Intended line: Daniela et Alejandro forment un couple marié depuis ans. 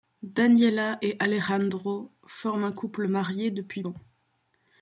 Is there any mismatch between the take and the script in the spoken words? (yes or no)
no